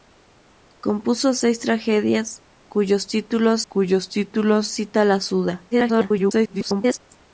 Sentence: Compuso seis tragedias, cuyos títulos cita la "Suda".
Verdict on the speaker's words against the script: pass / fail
fail